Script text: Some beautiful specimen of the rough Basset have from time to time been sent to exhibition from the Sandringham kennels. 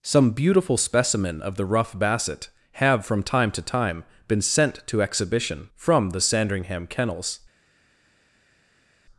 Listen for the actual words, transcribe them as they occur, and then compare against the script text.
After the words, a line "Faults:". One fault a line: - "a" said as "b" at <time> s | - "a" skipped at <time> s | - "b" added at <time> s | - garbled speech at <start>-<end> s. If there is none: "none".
Some beautiful specimen of the rough Basset have from time to time been sent to exhibition from the Sandringham kennels.
Faults:
none